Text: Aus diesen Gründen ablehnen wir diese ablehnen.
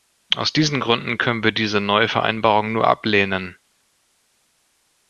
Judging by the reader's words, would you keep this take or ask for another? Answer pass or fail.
fail